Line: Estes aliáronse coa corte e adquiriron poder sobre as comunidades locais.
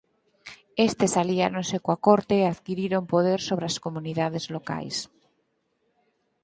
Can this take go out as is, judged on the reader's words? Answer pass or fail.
pass